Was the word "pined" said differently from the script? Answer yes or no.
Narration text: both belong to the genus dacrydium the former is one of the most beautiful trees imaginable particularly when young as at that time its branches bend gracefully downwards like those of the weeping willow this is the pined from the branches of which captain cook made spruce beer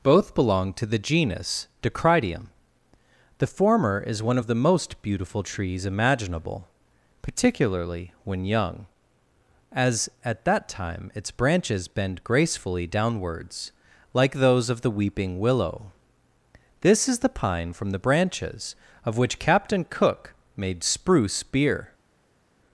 yes